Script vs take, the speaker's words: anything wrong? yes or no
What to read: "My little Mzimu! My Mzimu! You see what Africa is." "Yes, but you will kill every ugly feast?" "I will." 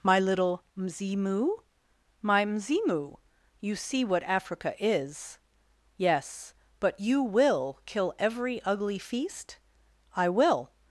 no